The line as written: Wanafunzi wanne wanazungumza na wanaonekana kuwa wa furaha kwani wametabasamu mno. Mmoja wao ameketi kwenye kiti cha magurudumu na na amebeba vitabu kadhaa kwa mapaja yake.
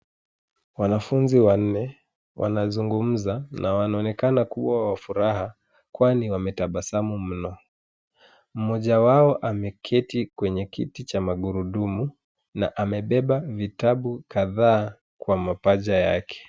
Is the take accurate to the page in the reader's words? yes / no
no